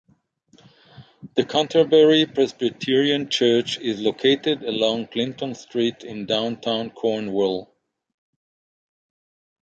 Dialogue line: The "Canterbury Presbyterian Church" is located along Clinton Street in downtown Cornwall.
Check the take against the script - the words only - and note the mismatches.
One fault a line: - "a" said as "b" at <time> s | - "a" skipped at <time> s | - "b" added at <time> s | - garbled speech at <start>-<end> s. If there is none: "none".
none